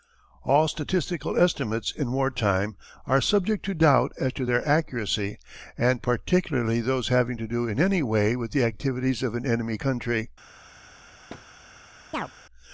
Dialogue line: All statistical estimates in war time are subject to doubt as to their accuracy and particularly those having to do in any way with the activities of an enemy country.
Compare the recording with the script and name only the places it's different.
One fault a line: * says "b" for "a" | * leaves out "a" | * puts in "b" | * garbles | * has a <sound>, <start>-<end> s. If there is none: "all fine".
* has a thud, 11.3-11.5 s
* has a chirp, 12.1-12.3 s